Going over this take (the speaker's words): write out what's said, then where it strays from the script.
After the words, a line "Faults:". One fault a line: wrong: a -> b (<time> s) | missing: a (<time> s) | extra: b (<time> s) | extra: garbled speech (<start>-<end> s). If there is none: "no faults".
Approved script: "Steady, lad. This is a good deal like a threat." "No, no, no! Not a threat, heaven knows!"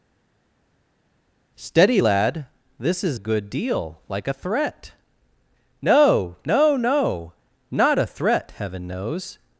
"Steady, lad. This is good deal like a threat." "No, no, no! Not a threat, heaven knows!"
Faults:
missing: a (3.2 s)